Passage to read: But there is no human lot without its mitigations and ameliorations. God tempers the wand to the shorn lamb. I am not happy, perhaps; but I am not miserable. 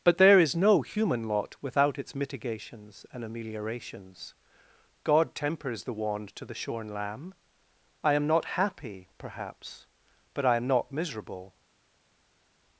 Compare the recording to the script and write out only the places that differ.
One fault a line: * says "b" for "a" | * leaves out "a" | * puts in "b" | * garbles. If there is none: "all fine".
all fine